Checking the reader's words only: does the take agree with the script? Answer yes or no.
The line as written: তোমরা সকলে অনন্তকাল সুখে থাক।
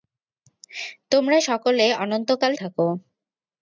no